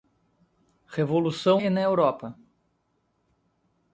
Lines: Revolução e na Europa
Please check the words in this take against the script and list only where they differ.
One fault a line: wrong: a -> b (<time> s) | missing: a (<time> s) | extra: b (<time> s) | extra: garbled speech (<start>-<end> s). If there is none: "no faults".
no faults